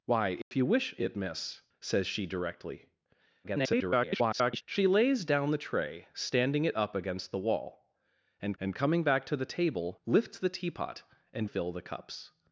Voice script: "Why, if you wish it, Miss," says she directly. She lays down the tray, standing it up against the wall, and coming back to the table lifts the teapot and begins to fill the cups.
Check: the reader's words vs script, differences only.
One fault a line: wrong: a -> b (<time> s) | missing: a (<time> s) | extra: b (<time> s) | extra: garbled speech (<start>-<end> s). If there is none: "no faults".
extra: garbled speech (3.4-4.6 s)
extra: and (8.6 s)
missing: begins to (11.5 s)